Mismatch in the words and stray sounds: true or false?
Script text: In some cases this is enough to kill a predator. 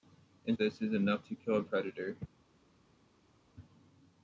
true